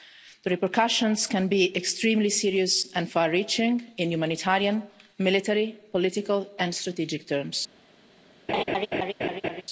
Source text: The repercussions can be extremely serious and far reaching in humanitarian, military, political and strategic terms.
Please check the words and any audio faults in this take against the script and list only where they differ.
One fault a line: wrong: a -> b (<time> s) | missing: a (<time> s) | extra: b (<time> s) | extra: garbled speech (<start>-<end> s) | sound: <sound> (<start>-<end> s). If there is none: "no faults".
sound: laugh (8.5-9.6 s)